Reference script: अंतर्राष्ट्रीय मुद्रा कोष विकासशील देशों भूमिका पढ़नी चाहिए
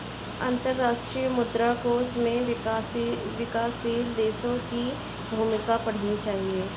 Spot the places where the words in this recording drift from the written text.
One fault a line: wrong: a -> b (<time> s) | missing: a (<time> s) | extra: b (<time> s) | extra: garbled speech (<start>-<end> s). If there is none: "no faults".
extra: में (2.2 s)
extra: की (4.7 s)